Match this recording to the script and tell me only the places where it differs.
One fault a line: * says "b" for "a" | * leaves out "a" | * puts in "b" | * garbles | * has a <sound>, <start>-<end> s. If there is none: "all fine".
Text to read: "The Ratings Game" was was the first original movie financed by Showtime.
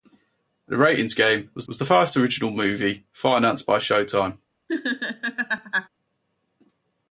* has a laugh, 4.7-5.9 s